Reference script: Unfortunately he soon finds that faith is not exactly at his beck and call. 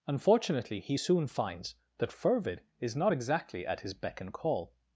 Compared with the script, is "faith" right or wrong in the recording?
wrong